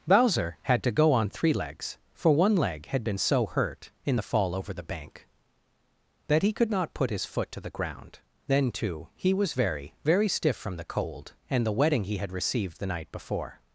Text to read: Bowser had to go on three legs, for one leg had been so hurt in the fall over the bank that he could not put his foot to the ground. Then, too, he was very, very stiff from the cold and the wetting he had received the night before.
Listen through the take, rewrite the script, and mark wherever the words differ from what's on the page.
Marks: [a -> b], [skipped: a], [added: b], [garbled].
Bowser had to go on three legs, for one leg had been so hurt in the fall over the bank that he could not put his foot to the ground. Then, too, he was very, very stiff from the cold and the wetting he had received the night before.